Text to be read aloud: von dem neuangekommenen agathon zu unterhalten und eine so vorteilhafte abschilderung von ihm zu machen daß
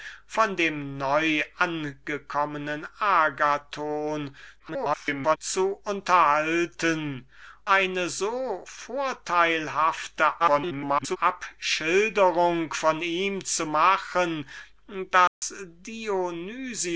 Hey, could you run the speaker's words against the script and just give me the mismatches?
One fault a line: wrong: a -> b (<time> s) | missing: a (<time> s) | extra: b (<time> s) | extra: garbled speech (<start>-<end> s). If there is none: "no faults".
extra: garbled speech (4.6-5.4 s)
missing: und (7.3 s)
extra: garbled speech (10.4-11.2 s)